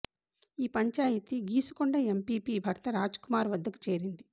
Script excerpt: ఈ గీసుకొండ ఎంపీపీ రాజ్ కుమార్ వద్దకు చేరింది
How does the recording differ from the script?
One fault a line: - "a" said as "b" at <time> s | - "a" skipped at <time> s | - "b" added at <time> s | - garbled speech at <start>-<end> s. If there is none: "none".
- "పంచాయితీ" added at 0.7 s
- "భర్త" added at 2.6 s